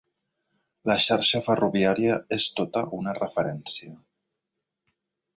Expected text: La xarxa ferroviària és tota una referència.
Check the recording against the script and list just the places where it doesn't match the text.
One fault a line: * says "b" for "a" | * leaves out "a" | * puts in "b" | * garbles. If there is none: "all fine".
all fine